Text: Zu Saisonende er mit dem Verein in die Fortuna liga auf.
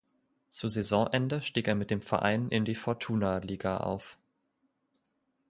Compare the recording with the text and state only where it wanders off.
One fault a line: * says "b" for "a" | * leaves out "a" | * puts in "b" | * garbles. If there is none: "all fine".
* puts in "stieg"